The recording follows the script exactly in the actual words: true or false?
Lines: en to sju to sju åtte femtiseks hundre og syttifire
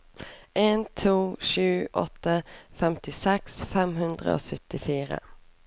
false